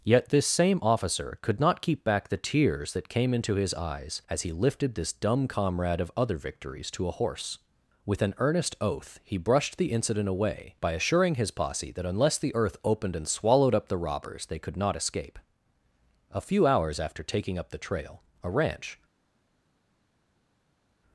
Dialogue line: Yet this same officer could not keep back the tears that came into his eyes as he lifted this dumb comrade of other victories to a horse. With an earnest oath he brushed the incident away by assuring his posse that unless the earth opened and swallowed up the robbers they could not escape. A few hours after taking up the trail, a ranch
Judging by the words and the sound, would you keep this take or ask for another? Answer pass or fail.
pass